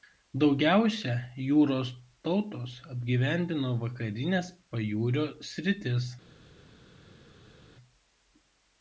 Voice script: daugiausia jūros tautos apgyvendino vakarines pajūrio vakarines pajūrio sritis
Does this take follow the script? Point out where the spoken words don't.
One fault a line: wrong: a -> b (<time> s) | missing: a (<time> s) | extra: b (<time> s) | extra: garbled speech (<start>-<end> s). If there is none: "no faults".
missing: vakarines pajūrio (5.3 s)